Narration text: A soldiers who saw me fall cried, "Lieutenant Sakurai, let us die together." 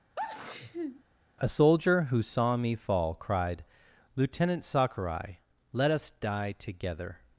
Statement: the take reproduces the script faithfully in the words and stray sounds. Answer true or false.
false